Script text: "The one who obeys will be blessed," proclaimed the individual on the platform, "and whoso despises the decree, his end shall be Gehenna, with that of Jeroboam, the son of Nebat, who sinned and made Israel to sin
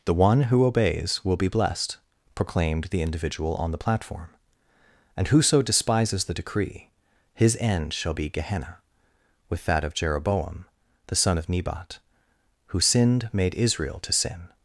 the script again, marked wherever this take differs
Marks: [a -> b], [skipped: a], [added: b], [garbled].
"The one who obeys will be blessed," proclaimed the individual on the platform, "and whoso despises the decree, his end shall be Gehenna, with that of Jeroboam, the son of Nebat, who sinned [skipped: and] made Israel to sin